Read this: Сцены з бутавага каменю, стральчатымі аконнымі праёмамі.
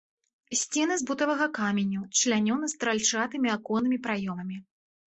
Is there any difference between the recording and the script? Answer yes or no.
yes